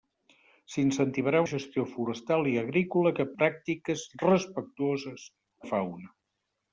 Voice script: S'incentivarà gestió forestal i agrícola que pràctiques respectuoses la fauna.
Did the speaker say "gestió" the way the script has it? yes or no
yes